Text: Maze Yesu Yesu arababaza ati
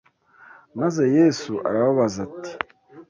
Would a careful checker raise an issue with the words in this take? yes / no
yes